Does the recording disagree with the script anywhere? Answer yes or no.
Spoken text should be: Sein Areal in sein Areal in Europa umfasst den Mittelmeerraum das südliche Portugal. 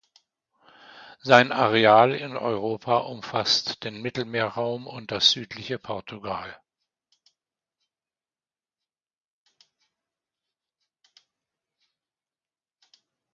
yes